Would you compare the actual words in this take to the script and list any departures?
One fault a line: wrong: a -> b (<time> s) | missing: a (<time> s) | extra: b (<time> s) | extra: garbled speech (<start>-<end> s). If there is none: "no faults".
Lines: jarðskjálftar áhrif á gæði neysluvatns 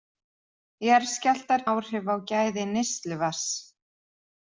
no faults